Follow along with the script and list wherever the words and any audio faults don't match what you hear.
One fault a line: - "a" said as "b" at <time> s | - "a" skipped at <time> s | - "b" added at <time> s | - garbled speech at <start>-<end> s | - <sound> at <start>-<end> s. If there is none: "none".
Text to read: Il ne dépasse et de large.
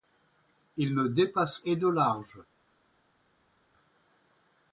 none